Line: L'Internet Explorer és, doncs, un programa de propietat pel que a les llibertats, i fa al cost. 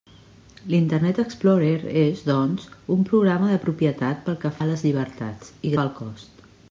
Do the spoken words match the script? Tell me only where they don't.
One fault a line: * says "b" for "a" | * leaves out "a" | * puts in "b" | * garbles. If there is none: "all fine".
all fine